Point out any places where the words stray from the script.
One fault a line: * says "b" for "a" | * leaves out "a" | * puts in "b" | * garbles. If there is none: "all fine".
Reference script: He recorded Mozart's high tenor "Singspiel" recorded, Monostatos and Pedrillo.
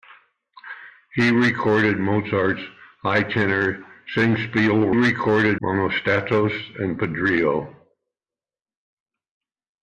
all fine